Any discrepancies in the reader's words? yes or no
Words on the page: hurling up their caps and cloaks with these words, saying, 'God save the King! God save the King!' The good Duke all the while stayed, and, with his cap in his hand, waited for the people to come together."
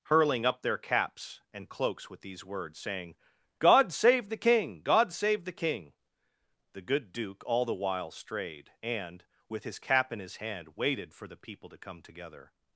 yes